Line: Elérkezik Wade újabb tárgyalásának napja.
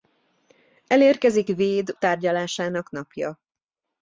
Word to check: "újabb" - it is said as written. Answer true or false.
false